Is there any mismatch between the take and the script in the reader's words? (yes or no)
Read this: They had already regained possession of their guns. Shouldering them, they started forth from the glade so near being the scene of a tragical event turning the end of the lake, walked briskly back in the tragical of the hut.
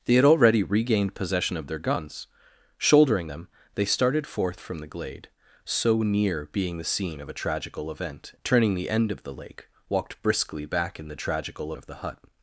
no